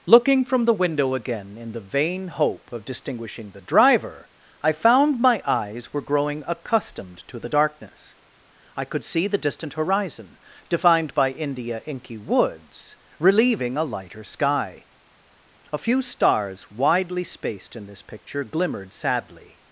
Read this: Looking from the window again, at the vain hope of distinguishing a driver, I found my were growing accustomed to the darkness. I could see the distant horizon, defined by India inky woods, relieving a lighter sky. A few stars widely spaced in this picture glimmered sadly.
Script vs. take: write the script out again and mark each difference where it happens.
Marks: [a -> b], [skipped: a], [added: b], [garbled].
Looking from the window again, [at -> in] the vain hope of distinguishing [a -> the] driver, I found my [added: eyes] were growing accustomed to the darkness. I could see the distant horizon, defined by India inky woods, relieving a lighter sky. A few stars widely spaced in this picture glimmered sadly.